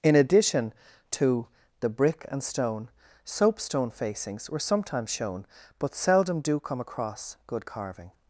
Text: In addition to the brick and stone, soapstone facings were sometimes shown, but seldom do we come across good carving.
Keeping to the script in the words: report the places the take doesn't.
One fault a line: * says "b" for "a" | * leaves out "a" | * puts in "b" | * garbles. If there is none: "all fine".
* leaves out "we"